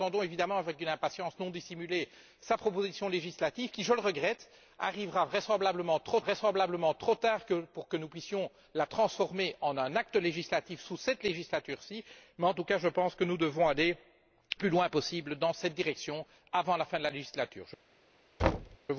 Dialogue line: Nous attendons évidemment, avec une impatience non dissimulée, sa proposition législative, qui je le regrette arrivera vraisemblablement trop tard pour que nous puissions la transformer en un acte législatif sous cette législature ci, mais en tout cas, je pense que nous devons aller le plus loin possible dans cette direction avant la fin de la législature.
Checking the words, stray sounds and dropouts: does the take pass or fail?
fail